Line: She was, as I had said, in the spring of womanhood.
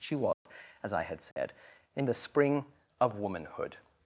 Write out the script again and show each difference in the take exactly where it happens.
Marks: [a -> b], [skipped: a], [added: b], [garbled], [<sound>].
She was, [dropout] as I had said, [dropout] in the spring of womanhood.